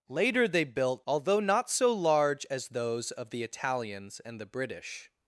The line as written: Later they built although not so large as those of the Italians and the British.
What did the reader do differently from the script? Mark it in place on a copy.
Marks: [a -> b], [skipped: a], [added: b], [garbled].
Later they built although not so large as those of the Italians and the British.